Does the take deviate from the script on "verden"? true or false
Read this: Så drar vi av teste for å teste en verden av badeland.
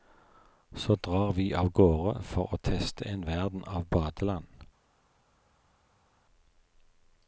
false